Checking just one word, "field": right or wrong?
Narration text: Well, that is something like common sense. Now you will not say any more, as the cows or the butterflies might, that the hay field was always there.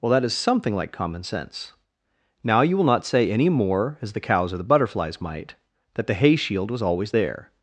wrong